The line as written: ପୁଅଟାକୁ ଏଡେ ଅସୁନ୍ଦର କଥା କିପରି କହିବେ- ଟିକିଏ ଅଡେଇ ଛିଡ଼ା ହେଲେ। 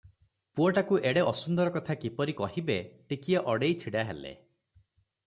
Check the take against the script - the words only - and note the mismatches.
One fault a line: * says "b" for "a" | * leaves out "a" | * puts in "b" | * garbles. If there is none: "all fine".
all fine